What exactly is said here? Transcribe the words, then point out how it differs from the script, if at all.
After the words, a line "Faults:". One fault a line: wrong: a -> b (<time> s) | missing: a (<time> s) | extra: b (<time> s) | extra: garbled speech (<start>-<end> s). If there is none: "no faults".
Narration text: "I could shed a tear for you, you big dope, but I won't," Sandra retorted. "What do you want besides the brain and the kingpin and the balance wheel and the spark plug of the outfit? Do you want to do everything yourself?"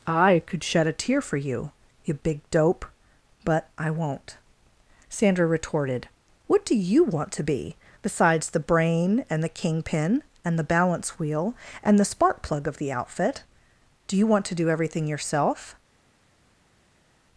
"I could shed a tear for you, you big dope, but I won't," Sandra retorted. "What do you want to be, besides the brain and the kingpin and the balance wheel and the spark plug of the outfit? Do you want to do everything yourself?"
Faults:
extra: to be (7.3 s)